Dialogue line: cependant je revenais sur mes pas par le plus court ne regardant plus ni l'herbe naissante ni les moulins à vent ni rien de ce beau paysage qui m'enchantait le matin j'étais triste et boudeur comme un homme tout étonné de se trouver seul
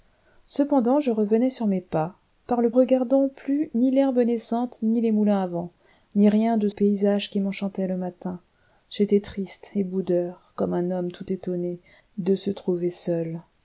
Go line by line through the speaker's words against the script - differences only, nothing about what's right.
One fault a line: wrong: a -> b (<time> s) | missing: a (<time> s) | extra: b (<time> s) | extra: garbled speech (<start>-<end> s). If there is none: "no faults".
missing: plus court ne (2.7 s)
missing: ce beau (6.7 s)